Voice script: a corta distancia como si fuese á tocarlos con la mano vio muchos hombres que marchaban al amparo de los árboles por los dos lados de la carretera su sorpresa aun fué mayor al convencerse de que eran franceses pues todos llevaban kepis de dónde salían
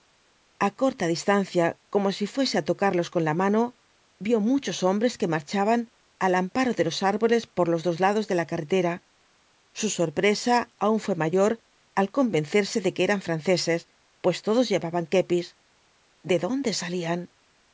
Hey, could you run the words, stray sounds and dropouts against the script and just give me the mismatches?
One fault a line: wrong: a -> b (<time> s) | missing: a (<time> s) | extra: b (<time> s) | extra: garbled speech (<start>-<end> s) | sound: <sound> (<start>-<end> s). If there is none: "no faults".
no faults